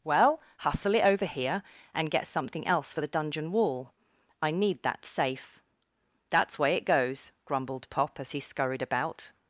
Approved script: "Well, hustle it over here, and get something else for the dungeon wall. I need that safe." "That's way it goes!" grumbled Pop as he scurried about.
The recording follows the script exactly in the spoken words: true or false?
true